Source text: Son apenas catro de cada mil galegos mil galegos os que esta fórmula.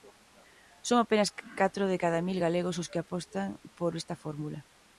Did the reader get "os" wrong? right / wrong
wrong